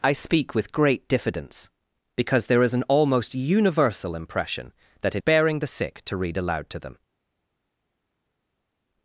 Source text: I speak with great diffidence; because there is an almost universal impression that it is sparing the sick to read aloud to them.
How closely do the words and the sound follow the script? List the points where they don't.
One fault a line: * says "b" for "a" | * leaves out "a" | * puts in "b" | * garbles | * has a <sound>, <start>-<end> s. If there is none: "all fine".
* leaves out "is"